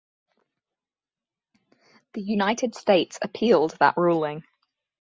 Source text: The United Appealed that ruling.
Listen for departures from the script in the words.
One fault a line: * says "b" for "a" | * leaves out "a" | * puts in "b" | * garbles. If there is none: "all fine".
* puts in "States"